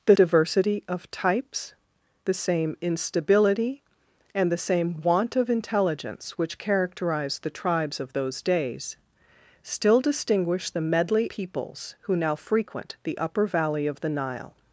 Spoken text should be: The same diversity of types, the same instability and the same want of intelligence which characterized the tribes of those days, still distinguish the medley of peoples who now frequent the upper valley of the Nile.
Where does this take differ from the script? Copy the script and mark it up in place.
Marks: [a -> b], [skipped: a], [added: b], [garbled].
The [skipped: same] diversity of types, the same instability and the same want of intelligence which characterized the tribes of those days, still distinguish the medley [skipped: of] peoples who now frequent the upper valley of the Nile.